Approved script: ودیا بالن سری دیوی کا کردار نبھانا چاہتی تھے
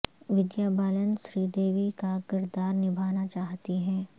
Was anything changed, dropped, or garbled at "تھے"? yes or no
yes